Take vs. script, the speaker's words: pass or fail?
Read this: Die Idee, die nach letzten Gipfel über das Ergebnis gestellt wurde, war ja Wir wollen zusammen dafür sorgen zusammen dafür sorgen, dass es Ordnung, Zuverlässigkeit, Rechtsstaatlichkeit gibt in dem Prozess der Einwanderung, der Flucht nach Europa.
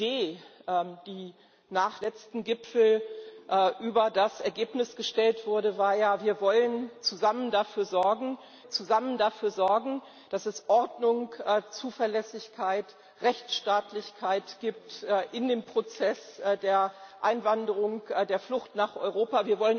pass